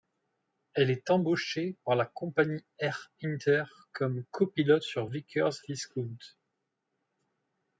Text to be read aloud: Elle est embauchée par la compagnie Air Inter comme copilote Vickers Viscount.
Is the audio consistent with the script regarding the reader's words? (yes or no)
no